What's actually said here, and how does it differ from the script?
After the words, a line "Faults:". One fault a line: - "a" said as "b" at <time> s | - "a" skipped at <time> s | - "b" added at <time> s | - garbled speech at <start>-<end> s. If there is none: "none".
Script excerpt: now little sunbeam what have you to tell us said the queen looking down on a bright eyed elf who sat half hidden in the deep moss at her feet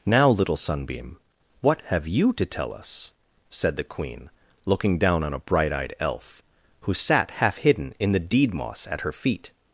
now little sunbeam what have you to tell us said the queen looking down on a bright eyed elf who sat half hidden in the deed moss at her feet
Faults:
- "deep" said as "deed" at 8.2 s